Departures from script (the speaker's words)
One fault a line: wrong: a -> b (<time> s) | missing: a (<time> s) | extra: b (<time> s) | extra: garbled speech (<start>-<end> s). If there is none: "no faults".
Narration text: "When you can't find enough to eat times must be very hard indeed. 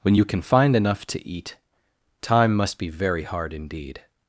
wrong: can't -> can (0.3 s)
wrong: times -> time (2.2 s)